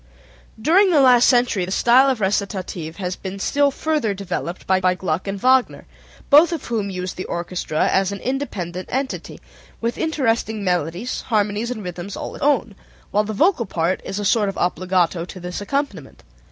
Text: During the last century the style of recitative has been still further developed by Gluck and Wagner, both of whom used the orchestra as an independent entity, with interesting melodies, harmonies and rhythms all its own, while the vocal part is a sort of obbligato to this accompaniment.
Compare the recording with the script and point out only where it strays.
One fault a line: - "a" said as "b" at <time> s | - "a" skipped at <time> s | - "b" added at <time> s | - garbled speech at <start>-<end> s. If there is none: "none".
- "by" added at 4.8 s
- "its" skipped at 12.4 s